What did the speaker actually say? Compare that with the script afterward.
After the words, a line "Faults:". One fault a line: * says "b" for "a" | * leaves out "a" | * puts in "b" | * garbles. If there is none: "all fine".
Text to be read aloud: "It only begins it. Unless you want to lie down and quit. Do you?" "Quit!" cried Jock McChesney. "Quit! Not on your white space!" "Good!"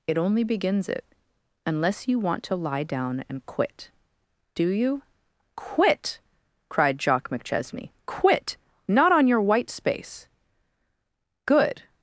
"It only begins it. Unless you want to lie down and quit. Do you?" "Quit!" cried Jock McChesney. "Quit! Not on your white space!" "Good!"
Faults:
all fine